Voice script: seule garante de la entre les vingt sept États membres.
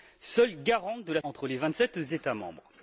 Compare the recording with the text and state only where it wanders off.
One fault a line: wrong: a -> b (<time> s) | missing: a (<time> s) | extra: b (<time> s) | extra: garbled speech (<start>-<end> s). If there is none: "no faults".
no faults